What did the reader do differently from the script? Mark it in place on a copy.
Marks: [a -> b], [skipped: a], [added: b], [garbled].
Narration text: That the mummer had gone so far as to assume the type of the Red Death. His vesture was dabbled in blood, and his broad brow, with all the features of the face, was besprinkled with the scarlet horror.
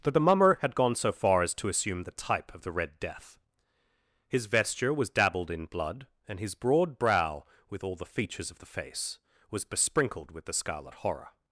That the mummer had gone so far as to assume the type of the Red Death. His vesture was dabbled in blood, and his broad brow, with all the features of the face, was besprinkled with the scarlet horror.